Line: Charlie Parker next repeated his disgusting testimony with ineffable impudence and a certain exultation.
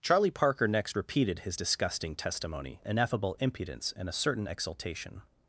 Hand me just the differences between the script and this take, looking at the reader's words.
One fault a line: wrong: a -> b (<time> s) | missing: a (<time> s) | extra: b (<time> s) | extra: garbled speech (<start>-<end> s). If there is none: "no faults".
missing: with (2.8 s)